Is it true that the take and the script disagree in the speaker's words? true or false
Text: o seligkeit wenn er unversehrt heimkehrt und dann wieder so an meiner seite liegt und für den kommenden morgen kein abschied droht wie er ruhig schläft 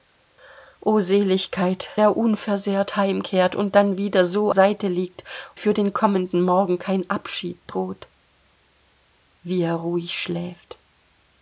true